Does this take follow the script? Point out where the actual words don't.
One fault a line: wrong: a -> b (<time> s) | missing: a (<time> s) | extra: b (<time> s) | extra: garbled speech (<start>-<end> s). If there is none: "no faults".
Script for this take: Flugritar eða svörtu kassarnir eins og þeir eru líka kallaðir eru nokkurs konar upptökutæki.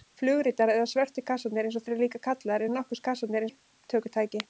missing: þeir (1.9 s)
wrong: konar -> kassarnir (3.1 s)